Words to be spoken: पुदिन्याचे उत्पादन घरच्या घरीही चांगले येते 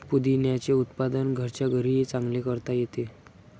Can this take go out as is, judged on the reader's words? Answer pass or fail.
fail